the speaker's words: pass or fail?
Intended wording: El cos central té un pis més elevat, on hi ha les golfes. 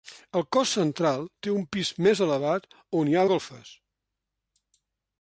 fail